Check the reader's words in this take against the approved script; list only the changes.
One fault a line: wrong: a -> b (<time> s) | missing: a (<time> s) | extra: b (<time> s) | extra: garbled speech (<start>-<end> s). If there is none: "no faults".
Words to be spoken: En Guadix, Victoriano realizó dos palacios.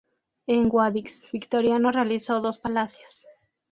no faults